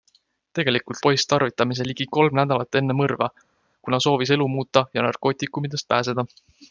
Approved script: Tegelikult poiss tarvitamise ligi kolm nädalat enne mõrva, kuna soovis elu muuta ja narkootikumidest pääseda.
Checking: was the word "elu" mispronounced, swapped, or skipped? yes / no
no